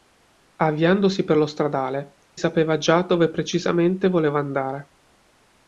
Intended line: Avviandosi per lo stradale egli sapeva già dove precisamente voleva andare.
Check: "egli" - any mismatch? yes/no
yes